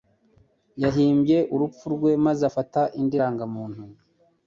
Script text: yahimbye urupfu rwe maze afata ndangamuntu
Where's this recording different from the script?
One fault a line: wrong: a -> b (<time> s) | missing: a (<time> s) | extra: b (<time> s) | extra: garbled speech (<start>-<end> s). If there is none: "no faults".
extra: indi (3.0 s)